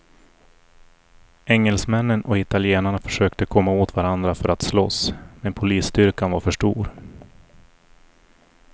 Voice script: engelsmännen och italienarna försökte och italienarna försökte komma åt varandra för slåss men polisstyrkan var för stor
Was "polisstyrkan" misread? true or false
false